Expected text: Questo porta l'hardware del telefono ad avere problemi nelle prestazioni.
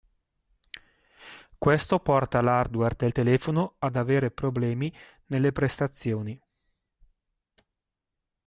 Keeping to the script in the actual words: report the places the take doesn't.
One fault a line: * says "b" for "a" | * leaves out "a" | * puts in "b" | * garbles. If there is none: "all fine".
all fine